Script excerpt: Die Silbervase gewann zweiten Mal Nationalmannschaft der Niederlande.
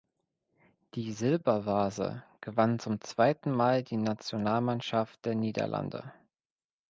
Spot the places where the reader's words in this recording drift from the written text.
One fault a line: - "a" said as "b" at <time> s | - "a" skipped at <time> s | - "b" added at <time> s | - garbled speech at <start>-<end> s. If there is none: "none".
- "zum" added at 2.8 s
- "die" added at 3.8 s